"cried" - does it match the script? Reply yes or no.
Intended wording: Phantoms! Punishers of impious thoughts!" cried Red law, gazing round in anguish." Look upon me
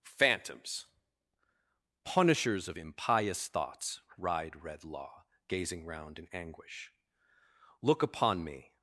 no